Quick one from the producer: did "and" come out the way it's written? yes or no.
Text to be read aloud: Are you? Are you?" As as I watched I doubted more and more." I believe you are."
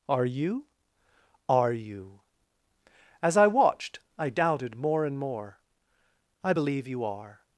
yes